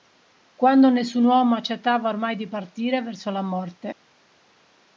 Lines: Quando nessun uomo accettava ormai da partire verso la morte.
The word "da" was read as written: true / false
false